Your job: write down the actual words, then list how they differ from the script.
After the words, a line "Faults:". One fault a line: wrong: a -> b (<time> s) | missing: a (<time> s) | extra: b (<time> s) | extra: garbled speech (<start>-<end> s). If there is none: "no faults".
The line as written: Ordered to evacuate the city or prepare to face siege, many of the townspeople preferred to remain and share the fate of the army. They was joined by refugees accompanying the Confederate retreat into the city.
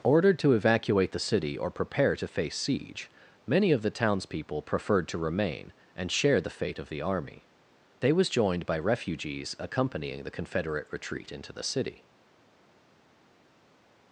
Ordered to evacuate the city or prepare to face siege, many of the townspeople preferred to remain and share the fate of the army. They was joined by refugees accompanying the Confederate retreat into the city.
Faults:
no faults